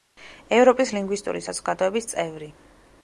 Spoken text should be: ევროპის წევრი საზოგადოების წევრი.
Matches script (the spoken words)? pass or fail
fail